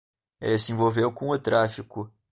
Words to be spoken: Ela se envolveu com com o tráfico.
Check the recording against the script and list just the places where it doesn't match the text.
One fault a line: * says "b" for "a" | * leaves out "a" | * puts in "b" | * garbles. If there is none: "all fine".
* says "Ele" for "Ela"
* leaves out "com"